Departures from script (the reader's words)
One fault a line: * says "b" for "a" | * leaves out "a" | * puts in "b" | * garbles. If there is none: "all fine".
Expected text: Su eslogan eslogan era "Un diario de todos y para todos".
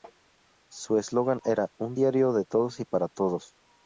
* leaves out "eslogan"